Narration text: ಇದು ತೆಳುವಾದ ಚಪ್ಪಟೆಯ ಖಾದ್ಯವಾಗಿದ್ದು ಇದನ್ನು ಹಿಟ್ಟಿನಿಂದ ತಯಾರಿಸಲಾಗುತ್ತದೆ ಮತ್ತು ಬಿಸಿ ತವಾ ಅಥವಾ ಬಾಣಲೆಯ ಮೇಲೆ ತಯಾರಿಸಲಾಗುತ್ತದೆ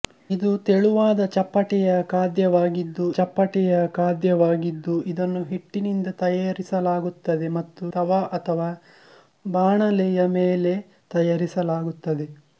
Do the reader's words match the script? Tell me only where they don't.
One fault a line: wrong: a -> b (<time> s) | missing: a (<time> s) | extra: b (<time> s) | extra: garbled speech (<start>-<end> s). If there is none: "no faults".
extra: ಚಪ್ಪಟೆಯ ಖಾದ್ಯವಾಗಿದ್ದು (3.1 s)
missing: ಬಿಸಿ (7.9 s)